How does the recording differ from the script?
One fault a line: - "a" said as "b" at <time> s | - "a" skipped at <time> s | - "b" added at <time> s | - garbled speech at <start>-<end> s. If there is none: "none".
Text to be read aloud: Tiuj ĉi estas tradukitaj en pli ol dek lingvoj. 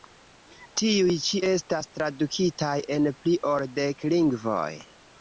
none